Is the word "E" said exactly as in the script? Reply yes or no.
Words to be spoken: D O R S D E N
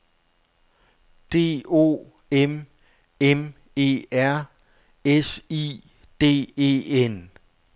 yes